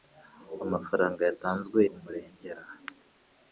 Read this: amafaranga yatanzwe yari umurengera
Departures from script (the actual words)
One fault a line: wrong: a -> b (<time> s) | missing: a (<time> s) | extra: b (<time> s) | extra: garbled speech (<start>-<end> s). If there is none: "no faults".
missing: yari (1.8 s)